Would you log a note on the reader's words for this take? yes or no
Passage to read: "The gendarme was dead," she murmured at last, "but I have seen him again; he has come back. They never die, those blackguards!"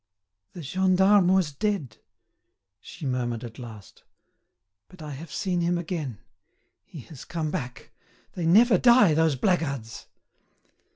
no